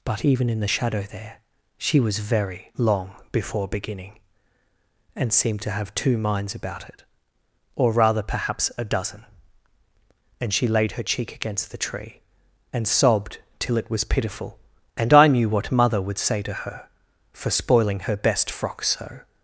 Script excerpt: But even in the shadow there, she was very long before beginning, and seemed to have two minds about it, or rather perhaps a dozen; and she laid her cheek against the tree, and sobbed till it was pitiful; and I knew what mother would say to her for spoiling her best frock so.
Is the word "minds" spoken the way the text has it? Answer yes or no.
yes